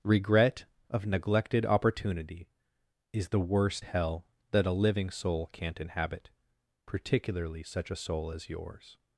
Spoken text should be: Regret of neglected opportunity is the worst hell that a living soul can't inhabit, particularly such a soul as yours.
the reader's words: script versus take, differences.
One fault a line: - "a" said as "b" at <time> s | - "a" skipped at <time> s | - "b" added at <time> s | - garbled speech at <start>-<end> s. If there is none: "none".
none